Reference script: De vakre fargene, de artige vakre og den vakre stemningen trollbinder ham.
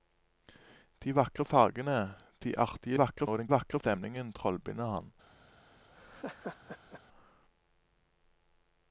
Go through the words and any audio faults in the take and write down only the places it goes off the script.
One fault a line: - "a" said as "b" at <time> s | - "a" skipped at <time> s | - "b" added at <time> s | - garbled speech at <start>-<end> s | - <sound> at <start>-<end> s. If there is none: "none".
- laugh at 6.0-7.0 s